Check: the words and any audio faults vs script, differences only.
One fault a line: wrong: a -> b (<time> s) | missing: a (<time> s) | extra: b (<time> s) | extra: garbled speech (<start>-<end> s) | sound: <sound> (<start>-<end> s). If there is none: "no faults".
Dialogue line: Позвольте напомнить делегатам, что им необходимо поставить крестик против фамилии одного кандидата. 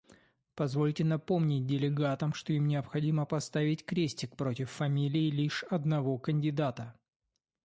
extra: лишь (5.3 s)